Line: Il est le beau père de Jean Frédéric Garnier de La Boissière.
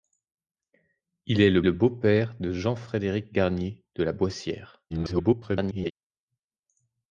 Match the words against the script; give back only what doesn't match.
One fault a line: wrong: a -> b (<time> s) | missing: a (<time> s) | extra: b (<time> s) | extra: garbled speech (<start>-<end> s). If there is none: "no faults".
extra: le (1.6 s)
extra: garbled speech (4.9-5.9 s)